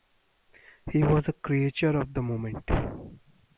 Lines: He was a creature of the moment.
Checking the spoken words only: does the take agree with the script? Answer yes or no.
yes